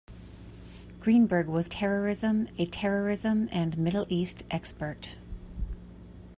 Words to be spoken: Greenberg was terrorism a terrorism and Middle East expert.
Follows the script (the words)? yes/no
yes